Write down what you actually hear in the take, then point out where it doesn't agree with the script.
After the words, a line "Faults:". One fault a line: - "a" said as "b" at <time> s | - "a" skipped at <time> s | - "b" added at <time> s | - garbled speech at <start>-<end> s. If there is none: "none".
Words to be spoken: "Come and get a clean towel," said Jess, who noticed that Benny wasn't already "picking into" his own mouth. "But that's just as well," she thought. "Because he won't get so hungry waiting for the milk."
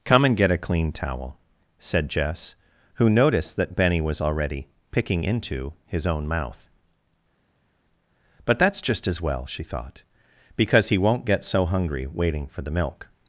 "Come and get a clean towel," said Jess, who noticed that Benny was already "picking into" his own mouth. "But that's just as well," she thought. "Because he won't get so hungry waiting for the milk."
Faults:
- "wasn't" said as "was" at 4.0 s